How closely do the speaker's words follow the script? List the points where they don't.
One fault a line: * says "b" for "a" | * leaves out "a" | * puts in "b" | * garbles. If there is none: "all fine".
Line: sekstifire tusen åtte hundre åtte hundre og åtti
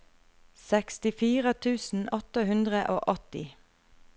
* leaves out "åtte hundre"